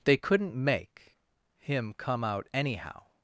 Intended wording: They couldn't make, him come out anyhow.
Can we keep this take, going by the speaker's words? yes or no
yes